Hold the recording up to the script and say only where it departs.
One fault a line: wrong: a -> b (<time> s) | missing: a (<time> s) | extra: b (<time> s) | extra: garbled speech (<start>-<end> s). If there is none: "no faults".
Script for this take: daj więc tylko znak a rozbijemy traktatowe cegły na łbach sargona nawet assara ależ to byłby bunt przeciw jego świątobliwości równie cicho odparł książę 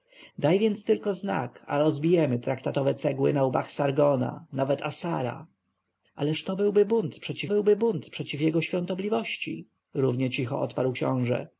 extra: byłby bunt przeciw (7.5 s)